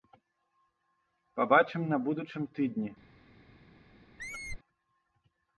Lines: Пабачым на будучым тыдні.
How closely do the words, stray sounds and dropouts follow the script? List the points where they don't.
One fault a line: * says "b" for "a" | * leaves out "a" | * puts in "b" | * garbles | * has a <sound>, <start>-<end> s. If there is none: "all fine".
* has a squeak, 4.2-4.6 s